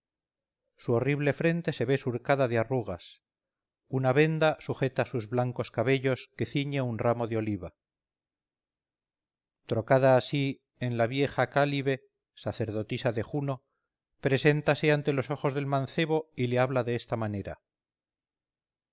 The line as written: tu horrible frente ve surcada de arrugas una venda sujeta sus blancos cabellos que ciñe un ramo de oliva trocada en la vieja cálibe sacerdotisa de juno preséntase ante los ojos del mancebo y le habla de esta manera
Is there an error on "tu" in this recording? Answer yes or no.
yes